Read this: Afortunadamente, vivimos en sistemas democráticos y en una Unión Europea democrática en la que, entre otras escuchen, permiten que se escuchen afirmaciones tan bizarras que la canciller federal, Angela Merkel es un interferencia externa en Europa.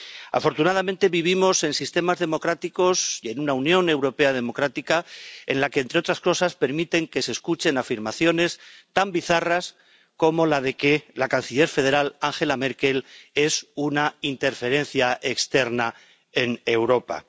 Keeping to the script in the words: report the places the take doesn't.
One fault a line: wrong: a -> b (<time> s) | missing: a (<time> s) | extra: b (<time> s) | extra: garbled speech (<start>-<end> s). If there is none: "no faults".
wrong: escuchen -> cosas (6.2 s)
extra: como la de (10.2 s)
wrong: un -> una (13.8 s)